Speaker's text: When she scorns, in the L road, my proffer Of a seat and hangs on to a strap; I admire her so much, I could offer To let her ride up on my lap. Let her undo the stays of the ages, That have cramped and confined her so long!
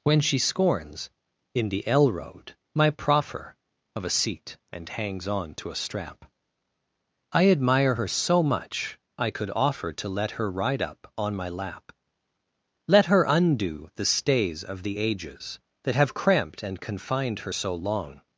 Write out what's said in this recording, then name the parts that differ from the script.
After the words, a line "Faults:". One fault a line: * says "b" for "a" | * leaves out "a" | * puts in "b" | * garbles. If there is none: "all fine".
When she scorns, in the L road, my proffer Of a seat and hangs on to a strap; I admire her so much, I could offer To let her ride up on my lap. Let her undo the stays of the ages, That have cramped and confined her so long!
Faults:
all fine